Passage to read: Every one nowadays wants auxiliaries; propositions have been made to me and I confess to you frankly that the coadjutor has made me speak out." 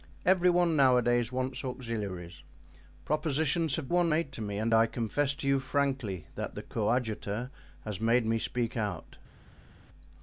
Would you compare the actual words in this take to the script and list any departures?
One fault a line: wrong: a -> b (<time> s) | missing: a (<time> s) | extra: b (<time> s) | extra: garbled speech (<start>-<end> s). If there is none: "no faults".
wrong: been -> one (3.9 s)